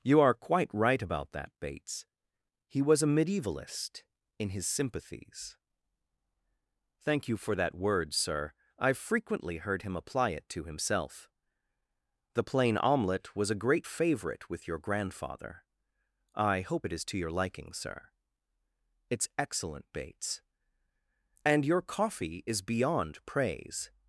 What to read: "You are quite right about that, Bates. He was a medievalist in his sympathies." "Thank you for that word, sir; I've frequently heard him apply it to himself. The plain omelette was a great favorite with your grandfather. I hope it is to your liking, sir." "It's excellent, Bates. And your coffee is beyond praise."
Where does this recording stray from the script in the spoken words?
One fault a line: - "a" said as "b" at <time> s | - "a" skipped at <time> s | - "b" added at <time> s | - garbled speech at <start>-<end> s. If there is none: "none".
none